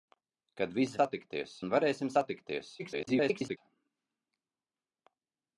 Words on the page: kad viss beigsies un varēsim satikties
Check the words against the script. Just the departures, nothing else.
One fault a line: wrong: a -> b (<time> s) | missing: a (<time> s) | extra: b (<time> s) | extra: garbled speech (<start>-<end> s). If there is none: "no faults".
wrong: beigsies -> satikties (1.0 s)
extra: garbled speech (2.8-3.6 s)